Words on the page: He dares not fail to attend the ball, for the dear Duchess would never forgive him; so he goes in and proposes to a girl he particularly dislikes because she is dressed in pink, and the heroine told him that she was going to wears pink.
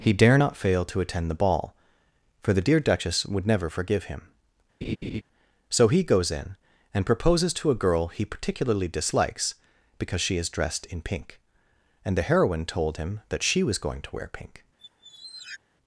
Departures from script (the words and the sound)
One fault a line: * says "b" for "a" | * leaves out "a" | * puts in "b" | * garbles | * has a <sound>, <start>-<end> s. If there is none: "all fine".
* says "dare" for "dares"
* has a laugh, 4.8-5.2 s
* says "wear" for "wears"
* has a squeak, 14.8-15.6 s